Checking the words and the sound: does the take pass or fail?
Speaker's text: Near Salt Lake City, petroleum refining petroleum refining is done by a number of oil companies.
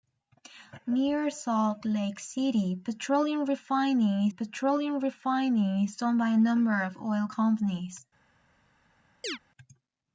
fail